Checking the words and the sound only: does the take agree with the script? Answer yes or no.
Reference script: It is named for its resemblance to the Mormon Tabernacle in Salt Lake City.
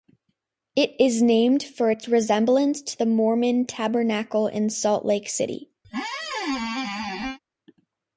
no